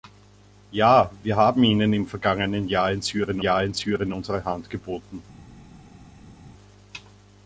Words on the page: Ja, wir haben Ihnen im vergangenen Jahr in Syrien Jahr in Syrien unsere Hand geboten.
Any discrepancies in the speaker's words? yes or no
no